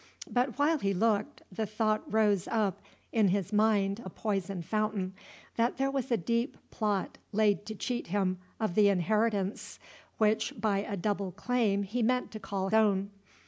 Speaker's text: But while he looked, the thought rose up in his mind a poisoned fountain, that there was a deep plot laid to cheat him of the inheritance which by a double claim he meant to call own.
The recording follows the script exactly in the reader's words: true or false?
true